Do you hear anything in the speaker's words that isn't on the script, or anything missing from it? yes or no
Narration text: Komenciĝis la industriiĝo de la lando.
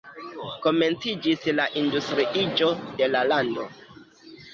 no